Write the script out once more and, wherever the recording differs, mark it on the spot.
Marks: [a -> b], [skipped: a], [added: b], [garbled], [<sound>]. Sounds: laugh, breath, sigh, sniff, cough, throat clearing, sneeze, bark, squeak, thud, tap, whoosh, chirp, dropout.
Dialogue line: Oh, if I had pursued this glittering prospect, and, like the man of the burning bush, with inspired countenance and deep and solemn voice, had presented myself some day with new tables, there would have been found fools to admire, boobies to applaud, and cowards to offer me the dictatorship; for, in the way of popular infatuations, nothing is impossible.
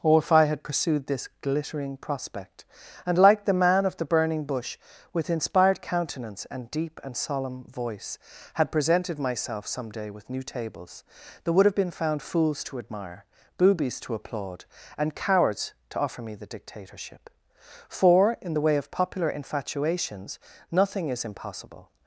Oh, if I had pursued this glittering prospect, and, like the man of the burning bush, with inspired countenance and deep and solemn voice, had presented myself some day with new tables, there would have been found fools to admire, boobies to applaud, and cowards to offer me the dictatorship; for, in the way of popular infatuations, nothing is impossible.